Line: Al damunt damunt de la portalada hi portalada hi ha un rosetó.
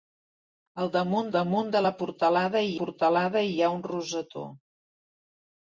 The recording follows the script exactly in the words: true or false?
true